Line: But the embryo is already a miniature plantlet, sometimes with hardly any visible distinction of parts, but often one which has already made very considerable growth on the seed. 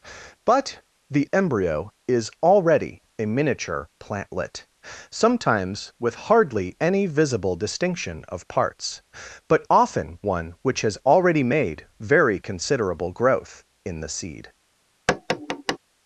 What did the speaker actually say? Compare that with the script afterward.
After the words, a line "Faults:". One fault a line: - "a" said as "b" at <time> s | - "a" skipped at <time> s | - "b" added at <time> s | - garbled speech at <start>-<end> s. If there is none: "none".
But the embryo is already a miniature plantlet, sometimes with hardly any visible distinction of parts, but often one which has already made very considerable growth in the seed.
Faults:
- "on" said as "in" at 13.8 s